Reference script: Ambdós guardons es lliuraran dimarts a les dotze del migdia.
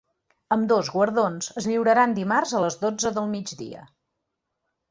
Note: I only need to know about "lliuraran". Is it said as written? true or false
true